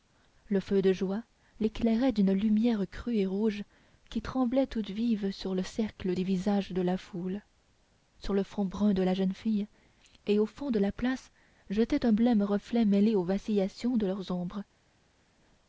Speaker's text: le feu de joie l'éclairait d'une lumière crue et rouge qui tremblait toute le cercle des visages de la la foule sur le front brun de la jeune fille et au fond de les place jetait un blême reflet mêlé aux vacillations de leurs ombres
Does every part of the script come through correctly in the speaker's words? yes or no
no